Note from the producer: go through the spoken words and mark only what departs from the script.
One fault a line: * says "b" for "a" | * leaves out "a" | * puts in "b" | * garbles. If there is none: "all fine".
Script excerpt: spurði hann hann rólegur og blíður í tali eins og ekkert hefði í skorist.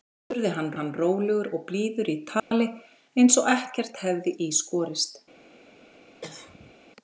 all fine